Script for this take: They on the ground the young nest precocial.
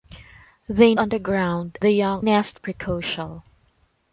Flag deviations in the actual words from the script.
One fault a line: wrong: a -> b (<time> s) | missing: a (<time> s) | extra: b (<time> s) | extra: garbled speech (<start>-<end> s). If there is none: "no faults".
no faults